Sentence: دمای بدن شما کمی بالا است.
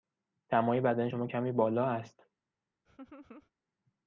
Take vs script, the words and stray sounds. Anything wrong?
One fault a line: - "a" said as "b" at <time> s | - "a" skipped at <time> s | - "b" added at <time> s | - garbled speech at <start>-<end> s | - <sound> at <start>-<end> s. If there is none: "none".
- laugh at 2.8-3.5 s